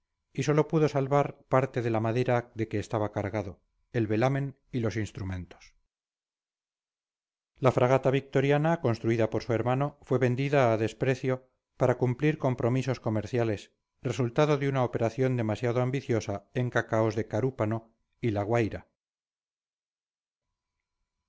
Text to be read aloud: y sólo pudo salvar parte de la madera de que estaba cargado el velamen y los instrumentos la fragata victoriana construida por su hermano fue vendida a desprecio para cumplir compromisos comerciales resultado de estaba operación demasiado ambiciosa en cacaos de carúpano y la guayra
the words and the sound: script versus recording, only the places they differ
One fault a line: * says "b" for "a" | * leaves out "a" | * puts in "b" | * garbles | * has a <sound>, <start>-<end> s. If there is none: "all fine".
* says "una" for "estaba"